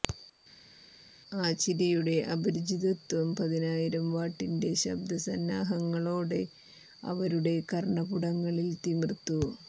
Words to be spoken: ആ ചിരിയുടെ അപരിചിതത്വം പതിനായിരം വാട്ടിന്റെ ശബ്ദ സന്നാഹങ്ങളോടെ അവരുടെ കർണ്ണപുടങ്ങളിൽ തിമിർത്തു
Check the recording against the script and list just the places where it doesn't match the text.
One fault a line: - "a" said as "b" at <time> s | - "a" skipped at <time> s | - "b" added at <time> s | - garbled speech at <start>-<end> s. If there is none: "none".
none